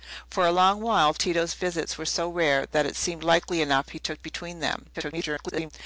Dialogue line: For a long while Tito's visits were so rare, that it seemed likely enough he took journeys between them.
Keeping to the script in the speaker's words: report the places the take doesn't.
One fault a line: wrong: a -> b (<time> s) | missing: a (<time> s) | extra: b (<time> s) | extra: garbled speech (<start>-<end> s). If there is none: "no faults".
missing: journeys (4.2 s)
extra: garbled speech (4.9-5.7 s)